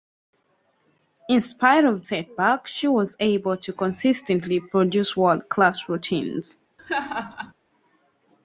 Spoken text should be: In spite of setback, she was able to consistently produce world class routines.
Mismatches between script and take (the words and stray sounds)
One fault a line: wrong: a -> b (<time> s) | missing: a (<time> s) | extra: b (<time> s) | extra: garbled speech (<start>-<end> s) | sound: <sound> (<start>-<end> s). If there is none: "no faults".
sound: laugh (6.8-7.5 s)